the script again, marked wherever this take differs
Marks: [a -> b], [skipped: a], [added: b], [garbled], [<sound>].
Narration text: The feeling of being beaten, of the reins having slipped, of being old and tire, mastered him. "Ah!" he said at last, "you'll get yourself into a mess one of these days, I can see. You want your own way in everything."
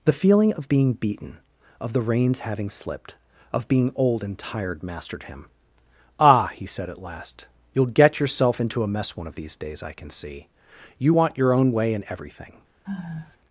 The feeling of being beaten, of the reins having slipped, of being old and [tire, -> tired] mastered him. "Ah!" he said at last, "you'll get yourself into a mess one of these days, I can see. You want your own way in everything." [sigh]